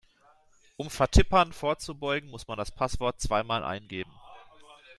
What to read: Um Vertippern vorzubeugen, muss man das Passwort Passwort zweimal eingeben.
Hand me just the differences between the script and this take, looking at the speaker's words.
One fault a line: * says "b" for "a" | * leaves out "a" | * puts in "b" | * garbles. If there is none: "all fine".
* leaves out "Passwort"